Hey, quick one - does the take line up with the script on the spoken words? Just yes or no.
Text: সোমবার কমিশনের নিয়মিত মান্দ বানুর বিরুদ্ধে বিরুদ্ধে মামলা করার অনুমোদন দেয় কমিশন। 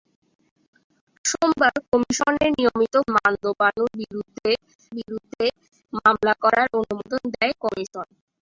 yes